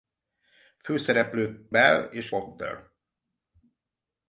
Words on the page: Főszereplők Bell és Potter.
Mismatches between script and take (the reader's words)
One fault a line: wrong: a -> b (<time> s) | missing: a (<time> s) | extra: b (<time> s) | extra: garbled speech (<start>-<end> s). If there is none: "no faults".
no faults